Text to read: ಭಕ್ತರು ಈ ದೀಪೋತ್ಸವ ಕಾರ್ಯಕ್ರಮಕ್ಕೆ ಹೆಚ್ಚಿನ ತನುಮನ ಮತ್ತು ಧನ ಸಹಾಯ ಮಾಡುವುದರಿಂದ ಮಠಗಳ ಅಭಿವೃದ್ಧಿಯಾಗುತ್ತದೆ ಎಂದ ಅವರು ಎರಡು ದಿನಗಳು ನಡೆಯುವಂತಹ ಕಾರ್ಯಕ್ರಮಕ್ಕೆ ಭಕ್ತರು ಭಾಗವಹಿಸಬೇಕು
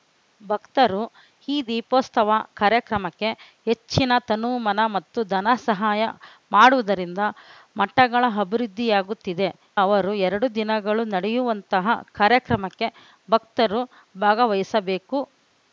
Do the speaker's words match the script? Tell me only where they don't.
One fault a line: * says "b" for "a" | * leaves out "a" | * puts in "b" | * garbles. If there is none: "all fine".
* leaves out "ಎಂದ"